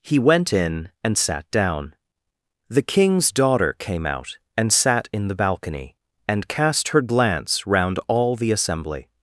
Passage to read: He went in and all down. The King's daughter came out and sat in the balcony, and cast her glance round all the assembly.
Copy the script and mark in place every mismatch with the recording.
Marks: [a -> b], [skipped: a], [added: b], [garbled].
He went in and [all -> sat] down. The King's daughter came out and sat in the balcony, and cast her glance round all the assembly.